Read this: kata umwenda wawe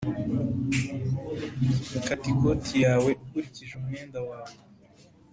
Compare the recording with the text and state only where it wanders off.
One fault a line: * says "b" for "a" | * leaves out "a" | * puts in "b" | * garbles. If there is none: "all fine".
* puts in "ikoti yawe ukurikije"